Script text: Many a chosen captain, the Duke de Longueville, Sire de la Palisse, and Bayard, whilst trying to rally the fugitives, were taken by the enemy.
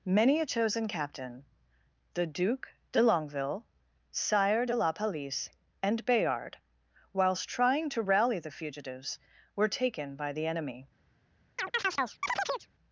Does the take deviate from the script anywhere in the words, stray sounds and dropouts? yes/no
yes